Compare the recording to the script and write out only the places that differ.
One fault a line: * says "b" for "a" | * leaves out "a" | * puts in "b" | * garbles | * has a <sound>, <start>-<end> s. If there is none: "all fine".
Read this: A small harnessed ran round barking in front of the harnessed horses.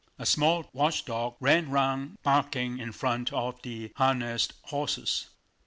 * says "watchdog" for "harnessed"